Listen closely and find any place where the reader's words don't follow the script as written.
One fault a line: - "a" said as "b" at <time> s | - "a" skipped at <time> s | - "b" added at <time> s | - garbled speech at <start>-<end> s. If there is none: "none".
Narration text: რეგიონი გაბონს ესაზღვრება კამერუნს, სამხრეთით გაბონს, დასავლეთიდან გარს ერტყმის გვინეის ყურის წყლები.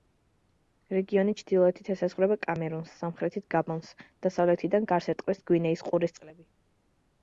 - "გაბონს" said as "ჩრდილოეთით" at 1.4 s